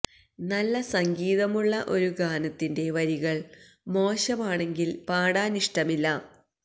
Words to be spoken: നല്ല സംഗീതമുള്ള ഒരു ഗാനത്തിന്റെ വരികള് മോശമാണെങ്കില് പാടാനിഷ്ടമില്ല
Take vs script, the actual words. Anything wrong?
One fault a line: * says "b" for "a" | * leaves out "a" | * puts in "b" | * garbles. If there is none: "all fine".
all fine